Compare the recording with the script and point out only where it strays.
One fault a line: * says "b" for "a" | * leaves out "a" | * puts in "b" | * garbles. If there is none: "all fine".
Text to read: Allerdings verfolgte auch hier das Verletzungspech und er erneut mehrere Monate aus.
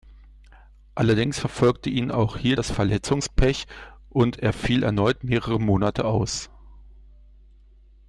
* puts in "ihn"
* puts in "fiel"